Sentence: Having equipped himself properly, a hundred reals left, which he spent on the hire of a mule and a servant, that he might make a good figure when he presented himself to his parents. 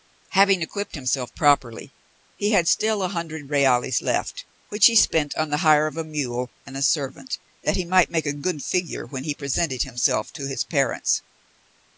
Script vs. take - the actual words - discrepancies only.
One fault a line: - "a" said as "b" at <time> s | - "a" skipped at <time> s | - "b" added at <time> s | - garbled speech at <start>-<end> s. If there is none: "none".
- "he had still" added at 2.4 s